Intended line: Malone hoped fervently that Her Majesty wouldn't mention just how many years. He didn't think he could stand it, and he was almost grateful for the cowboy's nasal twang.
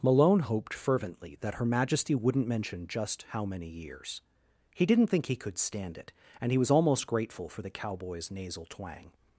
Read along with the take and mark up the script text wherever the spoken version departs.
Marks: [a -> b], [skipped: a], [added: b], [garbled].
Malone hoped fervently that Her Majesty wouldn't mention just how many years. He didn't think he could stand it, and he was almost grateful for the cowboy's nasal twang.